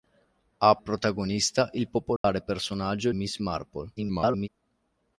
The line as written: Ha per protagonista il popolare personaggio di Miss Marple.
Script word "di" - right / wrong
wrong